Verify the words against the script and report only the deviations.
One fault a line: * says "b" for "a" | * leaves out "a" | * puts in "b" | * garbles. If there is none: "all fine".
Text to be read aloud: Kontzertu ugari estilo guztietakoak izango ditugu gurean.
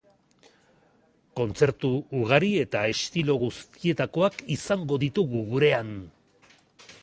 * puts in "eta"